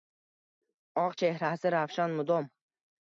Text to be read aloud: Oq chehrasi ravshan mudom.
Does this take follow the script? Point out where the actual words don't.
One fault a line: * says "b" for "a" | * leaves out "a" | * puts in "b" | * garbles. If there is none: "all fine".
all fine